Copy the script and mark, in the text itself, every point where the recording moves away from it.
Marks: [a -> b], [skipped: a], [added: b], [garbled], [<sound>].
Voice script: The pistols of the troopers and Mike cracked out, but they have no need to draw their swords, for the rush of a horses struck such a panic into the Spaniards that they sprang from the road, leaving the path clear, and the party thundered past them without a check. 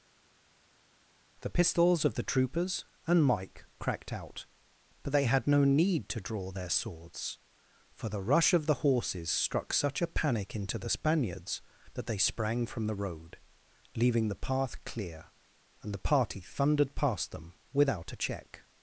The pistols of the troopers and Mike cracked out, but they [have -> had] no need to draw their swords, for the rush of [a -> the] horses struck such a panic into the Spaniards that they sprang from the road, leaving the path clear, and the party thundered past them without a check.